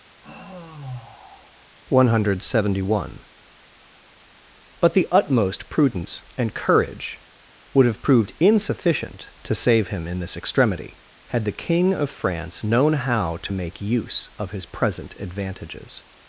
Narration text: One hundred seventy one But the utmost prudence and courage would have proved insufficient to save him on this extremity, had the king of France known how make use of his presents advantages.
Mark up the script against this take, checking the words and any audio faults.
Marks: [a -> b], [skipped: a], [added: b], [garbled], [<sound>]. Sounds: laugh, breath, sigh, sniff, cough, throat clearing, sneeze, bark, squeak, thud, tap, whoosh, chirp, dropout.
[sigh] One hundred seventy one But the utmost prudence and courage would have proved insufficient to save him [on -> in] this extremity, had the king of France known how [added: to] make use of his [presents -> present] advantages.